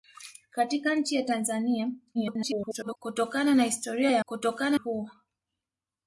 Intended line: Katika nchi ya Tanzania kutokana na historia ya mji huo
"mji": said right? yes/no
no